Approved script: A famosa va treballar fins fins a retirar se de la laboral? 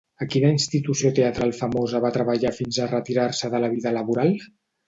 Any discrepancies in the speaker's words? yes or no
yes